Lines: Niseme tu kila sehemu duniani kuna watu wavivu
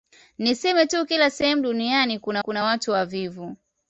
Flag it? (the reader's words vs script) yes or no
yes